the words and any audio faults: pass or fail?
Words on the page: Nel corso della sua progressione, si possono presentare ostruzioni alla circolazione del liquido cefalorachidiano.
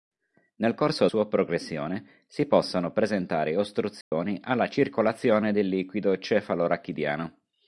fail